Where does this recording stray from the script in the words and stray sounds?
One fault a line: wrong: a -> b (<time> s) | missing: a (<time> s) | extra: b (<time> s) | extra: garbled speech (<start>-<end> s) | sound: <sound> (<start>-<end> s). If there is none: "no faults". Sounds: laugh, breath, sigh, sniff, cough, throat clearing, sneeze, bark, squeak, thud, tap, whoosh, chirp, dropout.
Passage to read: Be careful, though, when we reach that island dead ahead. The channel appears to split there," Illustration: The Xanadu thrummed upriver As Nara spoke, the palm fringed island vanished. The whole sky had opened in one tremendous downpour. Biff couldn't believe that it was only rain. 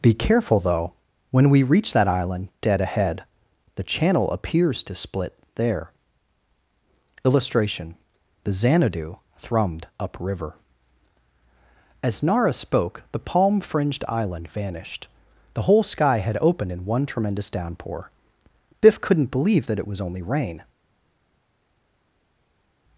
no faults